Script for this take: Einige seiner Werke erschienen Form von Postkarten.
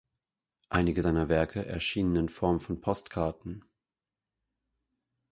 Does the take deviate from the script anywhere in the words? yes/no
yes